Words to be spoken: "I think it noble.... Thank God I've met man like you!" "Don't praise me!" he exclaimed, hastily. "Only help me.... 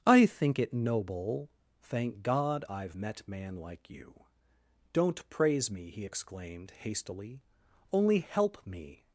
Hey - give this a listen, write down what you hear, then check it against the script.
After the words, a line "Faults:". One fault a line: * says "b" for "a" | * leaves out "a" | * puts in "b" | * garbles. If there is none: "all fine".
"I think it noble.... Thank God I've met man like you!" "Don't praise me!" he exclaimed, hastily. "Only help me....
Faults:
all fine